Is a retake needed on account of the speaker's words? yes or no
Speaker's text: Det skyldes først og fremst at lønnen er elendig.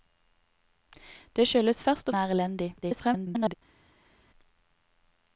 yes